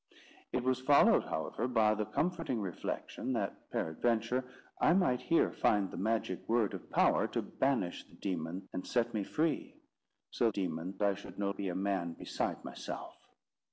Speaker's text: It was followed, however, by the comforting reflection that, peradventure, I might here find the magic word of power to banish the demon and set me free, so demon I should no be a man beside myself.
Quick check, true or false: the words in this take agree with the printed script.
true